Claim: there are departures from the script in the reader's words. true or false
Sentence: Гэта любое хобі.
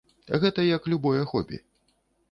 true